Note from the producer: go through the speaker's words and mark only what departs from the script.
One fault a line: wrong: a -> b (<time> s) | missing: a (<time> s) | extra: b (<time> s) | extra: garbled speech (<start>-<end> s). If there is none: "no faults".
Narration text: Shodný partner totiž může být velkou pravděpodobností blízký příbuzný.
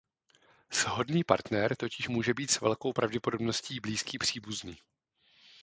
extra: s (2.5 s)